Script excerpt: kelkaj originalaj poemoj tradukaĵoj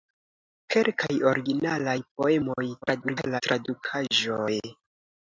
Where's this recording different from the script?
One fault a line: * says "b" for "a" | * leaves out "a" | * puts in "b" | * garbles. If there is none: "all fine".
* garbles